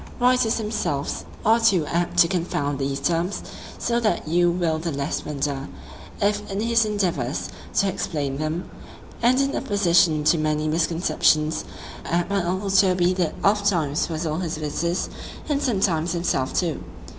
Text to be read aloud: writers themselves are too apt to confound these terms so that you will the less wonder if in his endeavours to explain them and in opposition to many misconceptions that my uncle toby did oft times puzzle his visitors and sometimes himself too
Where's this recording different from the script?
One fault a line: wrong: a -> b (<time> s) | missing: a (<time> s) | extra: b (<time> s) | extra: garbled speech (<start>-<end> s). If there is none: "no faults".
wrong: that -> apt (12.0 s)